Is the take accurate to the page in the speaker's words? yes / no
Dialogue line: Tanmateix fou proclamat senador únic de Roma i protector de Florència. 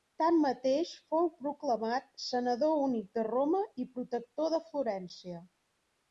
yes